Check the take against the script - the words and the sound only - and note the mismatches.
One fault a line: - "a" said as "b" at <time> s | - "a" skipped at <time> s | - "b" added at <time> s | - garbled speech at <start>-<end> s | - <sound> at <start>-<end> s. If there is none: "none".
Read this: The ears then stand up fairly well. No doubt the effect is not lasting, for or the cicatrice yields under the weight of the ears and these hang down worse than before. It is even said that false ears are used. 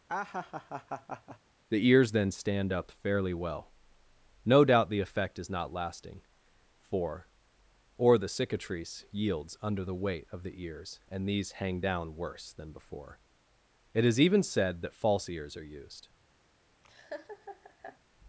- laugh at 0.1-1.4 s
- laugh at 16.8-18.0 s